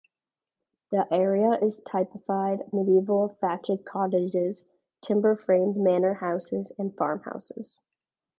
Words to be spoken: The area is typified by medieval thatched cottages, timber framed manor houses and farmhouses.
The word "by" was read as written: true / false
false